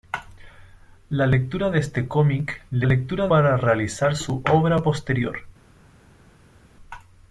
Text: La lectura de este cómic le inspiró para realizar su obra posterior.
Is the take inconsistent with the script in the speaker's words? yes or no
yes